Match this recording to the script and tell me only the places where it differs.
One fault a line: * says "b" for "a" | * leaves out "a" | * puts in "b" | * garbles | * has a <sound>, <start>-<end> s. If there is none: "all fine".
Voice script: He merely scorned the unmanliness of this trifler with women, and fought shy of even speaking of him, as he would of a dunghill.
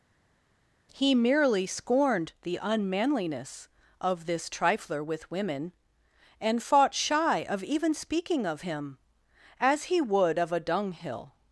all fine